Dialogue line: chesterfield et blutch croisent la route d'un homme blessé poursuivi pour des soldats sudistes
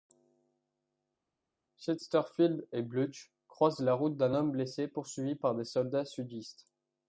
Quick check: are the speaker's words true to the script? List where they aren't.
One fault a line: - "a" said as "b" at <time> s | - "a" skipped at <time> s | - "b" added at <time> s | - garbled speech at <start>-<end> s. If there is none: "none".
- "pour" said as "par" at 5.3 s